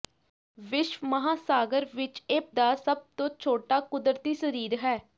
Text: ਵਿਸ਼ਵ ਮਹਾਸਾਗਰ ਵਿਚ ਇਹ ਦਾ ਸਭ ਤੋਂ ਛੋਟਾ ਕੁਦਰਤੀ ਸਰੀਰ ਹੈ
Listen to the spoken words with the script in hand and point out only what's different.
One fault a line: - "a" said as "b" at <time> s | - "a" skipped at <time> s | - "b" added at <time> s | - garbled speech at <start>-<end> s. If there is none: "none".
none